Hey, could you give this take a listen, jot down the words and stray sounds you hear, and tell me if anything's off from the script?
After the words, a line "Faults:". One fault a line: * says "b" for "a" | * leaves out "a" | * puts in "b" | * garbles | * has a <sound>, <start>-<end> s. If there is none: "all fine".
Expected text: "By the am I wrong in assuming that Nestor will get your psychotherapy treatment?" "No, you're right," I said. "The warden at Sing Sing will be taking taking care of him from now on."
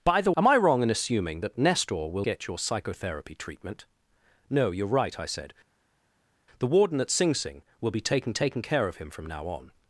"By the am I wrong in assuming that Nestor will get your psychotherapy treatment?" "No, you're right," I said. "The warden at Sing Sing will be taking taking care of him from now on."
Faults:
all fine